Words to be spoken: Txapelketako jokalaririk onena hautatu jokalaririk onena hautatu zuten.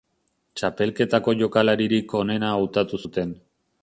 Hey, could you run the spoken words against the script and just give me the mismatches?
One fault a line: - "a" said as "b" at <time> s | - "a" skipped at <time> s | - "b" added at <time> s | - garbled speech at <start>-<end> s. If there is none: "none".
- "jokalaririk onena hautatu" skipped at 3.0 s